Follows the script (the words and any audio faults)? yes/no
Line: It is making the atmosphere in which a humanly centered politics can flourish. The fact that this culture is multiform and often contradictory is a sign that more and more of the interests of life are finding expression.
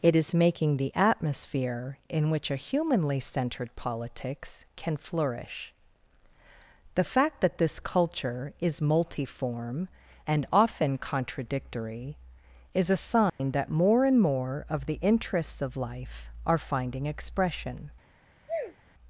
no